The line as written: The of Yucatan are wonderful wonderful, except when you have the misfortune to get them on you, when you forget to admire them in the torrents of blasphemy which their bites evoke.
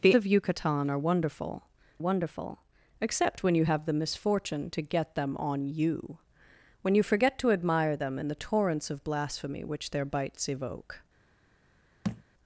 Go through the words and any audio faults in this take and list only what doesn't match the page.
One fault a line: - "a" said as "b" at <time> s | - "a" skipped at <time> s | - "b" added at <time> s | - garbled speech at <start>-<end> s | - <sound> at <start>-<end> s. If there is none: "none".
- thud at 12.0-12.2 s